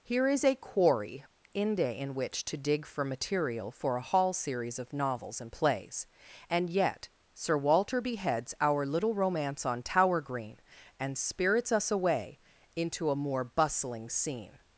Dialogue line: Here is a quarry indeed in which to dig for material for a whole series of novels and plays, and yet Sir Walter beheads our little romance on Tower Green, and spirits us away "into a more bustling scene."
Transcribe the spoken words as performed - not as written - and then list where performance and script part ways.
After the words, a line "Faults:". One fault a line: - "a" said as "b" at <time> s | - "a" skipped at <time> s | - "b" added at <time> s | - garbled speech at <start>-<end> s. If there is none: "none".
Here is a quarry inde in which to dig for material for a hall series of novels and plays, and yet Sir Walter beheads our little romance on Tower Green, and spirits us away "into a more bustling scene."
Faults:
- "indeed" said as "inde" at 1.5 s
- "whole" said as "hall" at 4.0 s